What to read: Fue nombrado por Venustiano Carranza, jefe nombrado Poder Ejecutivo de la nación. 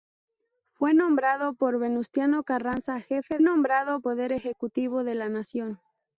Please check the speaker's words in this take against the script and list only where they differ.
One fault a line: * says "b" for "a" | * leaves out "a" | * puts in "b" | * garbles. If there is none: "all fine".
all fine